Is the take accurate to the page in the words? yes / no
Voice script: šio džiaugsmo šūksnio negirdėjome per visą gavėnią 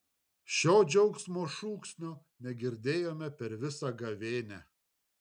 yes